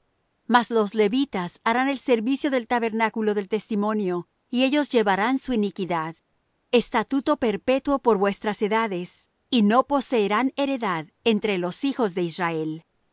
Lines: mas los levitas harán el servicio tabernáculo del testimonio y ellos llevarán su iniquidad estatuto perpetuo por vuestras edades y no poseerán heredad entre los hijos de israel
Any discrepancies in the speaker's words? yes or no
yes